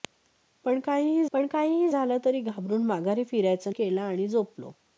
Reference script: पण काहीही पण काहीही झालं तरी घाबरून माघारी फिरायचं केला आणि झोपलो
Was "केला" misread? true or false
false